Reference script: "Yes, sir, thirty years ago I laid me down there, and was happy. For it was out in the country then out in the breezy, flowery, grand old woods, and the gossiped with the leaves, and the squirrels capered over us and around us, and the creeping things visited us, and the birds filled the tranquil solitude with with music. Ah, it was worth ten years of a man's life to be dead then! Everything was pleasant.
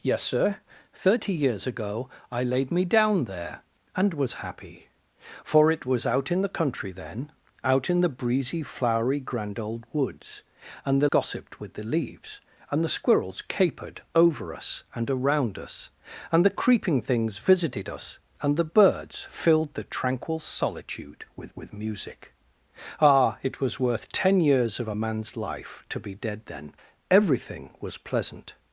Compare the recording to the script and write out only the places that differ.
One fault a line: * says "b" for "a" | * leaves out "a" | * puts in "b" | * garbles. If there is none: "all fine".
all fine